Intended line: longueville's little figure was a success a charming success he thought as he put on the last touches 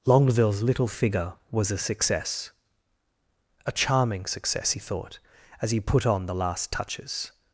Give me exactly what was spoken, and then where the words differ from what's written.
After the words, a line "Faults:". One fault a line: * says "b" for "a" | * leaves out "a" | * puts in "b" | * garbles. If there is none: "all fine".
longueville's little figure was a success a charming success he thought as he put on the last touches
Faults:
all fine